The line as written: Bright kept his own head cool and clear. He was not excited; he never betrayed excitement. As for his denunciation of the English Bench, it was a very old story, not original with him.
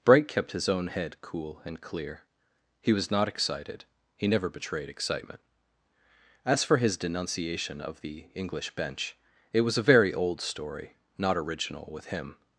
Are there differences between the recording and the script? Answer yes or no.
no